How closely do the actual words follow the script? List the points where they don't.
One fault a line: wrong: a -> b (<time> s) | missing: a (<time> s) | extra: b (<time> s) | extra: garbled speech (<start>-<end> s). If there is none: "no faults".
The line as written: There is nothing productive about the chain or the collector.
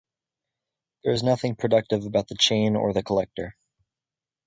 no faults